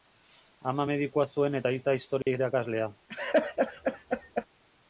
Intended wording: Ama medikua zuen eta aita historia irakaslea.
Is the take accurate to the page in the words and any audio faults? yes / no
no